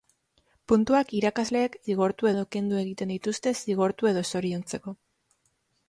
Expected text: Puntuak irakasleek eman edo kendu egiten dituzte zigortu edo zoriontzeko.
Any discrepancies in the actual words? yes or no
yes